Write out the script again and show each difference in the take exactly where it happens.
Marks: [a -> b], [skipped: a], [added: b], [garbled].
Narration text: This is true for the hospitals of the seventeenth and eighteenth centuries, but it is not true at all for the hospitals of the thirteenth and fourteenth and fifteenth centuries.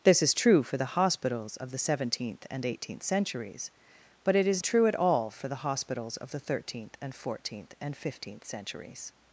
This is true for the hospitals of the seventeenth and eighteenth centuries, but it is [skipped: not] true at all for the hospitals of the thirteenth and fourteenth and fifteenth centuries.